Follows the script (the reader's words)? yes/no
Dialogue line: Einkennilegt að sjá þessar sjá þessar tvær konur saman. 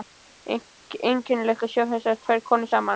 no